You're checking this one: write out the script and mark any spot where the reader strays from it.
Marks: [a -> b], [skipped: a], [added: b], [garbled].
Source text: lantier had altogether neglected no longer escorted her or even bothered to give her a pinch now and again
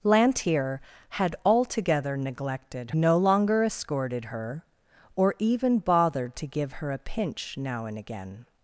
lantier had altogether neglected no longer escorted her or even bothered to give her a pinch now and again